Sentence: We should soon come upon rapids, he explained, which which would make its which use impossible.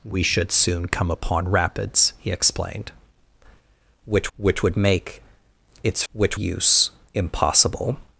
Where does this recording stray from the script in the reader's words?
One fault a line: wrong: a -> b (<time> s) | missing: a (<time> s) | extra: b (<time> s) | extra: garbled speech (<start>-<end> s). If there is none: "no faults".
no faults